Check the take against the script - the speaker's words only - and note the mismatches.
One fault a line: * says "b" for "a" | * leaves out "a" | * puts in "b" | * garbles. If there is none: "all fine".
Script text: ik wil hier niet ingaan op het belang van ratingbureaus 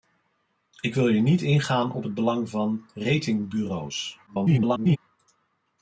* garbles